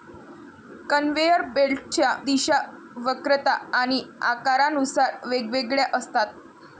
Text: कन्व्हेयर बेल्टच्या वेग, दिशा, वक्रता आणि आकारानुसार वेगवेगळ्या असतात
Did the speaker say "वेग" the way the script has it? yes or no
no